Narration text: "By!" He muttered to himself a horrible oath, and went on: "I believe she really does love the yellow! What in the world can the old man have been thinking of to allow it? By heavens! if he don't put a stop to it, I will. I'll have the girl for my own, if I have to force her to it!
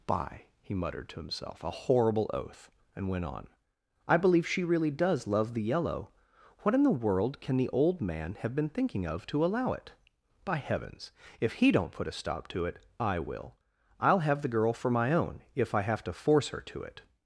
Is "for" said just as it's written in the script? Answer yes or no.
yes